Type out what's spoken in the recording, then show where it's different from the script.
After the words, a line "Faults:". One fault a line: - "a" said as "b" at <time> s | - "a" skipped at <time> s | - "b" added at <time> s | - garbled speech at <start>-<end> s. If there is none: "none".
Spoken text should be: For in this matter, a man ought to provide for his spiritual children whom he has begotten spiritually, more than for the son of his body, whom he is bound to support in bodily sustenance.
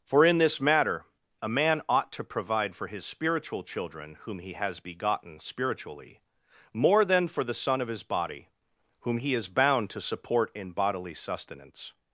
For in this matter, a man ought to provide for his spiritual children whom he has begotten spiritually, more than for the son of his body, whom he is bound to support in bodily sustenance.
Faults:
none